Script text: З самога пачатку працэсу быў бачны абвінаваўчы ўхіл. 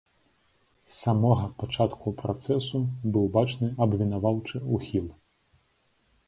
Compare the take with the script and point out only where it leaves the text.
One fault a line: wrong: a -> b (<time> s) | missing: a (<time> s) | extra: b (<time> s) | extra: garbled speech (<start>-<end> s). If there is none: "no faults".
no faults